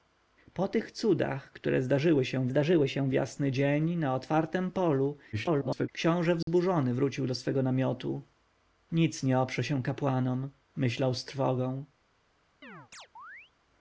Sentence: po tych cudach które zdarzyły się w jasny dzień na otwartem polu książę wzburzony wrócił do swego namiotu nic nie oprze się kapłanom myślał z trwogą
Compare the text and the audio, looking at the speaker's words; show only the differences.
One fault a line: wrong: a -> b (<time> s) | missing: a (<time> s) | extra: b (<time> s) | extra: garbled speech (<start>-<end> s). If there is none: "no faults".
extra: zdarzyły się (2.5 s)
extra: garbled speech (5.3-5.9 s)